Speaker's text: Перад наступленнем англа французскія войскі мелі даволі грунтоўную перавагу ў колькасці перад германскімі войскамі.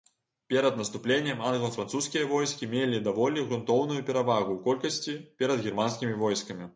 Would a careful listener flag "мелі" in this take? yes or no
no